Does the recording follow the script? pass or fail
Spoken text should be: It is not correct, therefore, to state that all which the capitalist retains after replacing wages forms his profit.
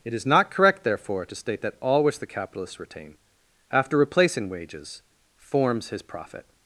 fail